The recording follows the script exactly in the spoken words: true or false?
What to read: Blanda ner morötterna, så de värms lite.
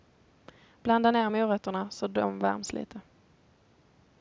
true